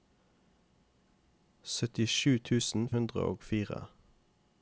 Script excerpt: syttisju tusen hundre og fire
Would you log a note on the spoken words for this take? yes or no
no